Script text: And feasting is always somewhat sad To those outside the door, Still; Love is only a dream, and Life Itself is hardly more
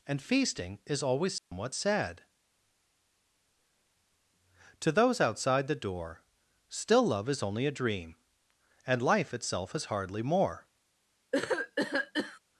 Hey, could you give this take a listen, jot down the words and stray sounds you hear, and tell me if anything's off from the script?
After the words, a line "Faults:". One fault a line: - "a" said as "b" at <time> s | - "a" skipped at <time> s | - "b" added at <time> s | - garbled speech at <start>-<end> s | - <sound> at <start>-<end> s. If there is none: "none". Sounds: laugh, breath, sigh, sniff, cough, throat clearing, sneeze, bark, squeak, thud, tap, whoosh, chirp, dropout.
And feasting is always somewhat sad To those outside the door, Still; Love is only a dream, and Life Itself is hardly more
Faults:
- dropout at 1.4-1.5 s
- cough at 11.3-12.4 s